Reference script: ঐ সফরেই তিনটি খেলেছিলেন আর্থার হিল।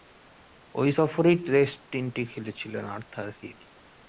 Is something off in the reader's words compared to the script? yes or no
yes